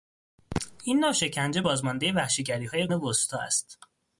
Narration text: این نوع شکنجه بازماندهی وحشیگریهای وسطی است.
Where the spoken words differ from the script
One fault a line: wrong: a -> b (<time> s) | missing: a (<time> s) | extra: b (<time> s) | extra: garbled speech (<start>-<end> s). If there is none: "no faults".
no faults